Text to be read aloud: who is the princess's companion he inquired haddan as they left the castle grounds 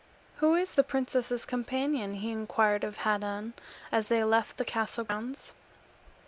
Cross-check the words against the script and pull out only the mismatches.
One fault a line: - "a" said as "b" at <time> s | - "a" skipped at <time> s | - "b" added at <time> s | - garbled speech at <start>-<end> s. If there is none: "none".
- "of" added at 2.8 s